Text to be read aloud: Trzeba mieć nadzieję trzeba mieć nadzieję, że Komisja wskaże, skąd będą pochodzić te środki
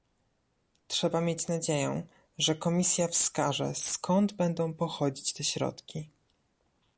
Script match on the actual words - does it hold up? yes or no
no